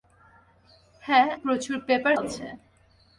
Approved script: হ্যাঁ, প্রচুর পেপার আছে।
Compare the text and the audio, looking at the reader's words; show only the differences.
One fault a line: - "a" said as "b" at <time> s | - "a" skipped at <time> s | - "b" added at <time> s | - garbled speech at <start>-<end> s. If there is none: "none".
none